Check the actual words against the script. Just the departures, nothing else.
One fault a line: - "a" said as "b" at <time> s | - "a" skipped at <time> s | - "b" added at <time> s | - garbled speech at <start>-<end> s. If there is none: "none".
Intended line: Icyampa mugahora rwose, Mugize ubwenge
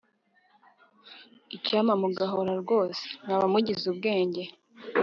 - "Mwaba" added at 3.2 s